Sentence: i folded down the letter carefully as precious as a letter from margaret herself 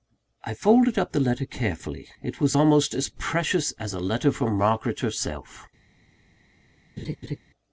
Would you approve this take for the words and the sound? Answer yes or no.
no